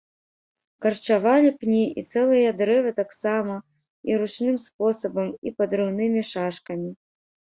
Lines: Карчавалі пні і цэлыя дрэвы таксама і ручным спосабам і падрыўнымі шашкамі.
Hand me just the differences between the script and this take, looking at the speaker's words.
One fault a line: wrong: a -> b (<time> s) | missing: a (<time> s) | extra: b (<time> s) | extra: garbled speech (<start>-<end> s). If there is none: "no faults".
no faults